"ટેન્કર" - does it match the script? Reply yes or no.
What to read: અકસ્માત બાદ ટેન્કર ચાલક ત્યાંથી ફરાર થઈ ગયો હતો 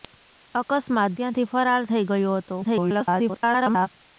no